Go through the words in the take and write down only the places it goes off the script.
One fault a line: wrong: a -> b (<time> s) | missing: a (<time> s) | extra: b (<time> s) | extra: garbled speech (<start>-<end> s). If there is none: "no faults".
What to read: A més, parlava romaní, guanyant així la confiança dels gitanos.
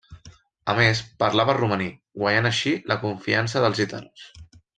no faults